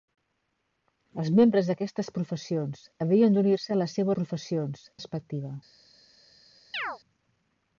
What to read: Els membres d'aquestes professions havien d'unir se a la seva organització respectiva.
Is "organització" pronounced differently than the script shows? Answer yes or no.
yes